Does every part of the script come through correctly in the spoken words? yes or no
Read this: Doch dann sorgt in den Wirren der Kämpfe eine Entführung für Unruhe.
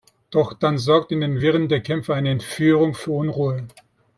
yes